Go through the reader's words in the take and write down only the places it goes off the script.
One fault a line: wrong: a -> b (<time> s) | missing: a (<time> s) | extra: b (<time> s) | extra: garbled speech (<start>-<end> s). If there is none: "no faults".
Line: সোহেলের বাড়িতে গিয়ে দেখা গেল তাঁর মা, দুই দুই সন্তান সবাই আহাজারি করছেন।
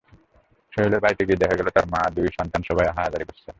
missing: দুই (2.3 s)